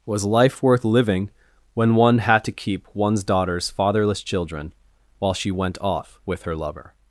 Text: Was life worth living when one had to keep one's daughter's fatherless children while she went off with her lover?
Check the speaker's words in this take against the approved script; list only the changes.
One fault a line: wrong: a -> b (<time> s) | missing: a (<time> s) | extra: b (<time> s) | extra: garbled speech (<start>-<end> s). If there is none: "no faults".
no faults